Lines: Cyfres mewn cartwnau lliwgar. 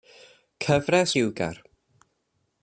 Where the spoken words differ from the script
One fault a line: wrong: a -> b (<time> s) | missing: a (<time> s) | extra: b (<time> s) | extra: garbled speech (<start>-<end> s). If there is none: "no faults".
missing: mewn cartwnau (1.1 s)